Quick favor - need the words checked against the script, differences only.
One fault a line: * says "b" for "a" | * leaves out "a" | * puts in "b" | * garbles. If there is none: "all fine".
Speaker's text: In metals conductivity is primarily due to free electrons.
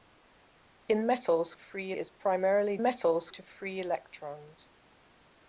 * says "free" for "conductivity"
* says "metals" for "due"